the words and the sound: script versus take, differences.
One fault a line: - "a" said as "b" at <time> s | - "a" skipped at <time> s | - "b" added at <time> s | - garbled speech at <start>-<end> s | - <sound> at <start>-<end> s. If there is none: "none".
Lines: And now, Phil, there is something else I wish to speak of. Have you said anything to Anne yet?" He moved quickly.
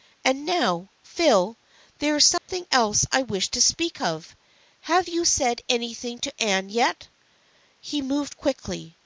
- dropout at 2.4-2.5 s